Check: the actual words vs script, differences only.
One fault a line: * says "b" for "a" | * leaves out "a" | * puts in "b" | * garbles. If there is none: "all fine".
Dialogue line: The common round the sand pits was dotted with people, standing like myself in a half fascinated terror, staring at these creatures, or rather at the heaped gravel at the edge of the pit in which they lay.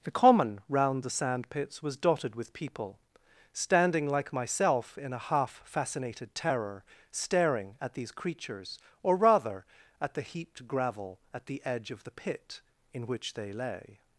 all fine